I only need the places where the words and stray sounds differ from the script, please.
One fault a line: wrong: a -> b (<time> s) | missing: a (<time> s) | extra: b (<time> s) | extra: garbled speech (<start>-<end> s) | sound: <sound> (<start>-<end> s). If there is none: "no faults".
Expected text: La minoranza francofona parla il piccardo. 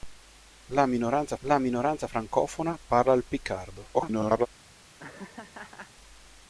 extra: la minoranza (1.4 s)
extra: garbled speech (3.9-4.5 s)
sound: laugh (5.0-5.9 s)